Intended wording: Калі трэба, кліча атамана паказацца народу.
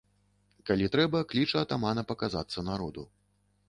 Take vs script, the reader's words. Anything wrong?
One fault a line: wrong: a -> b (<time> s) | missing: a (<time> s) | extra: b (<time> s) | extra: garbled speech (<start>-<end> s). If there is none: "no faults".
no faults